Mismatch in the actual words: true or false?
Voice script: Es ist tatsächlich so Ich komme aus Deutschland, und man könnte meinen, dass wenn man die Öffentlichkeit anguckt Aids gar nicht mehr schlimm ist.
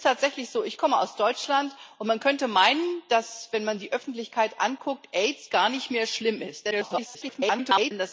true